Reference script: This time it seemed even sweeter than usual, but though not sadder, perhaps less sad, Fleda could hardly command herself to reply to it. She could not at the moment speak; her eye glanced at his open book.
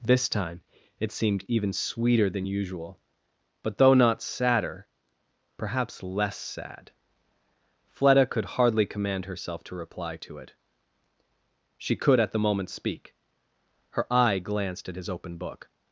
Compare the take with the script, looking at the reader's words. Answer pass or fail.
fail